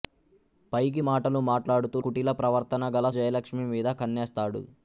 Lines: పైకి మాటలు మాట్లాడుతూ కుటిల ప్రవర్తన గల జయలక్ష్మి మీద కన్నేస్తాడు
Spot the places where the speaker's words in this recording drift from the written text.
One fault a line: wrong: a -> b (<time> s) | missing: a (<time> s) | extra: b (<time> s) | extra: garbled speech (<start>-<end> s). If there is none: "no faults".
no faults